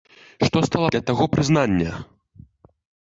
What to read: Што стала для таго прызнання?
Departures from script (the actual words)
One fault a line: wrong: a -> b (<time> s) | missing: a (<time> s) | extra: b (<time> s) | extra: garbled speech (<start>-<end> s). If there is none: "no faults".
no faults